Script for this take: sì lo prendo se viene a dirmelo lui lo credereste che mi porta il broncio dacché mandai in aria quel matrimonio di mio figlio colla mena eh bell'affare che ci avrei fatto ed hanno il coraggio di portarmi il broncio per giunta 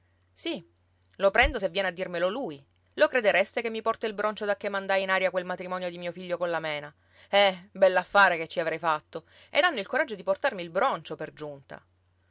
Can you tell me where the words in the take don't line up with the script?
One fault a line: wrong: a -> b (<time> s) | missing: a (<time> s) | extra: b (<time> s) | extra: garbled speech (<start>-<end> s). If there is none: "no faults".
no faults